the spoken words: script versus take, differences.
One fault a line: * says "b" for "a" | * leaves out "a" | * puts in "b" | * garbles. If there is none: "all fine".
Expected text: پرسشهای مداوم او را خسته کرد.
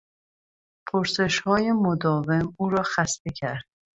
all fine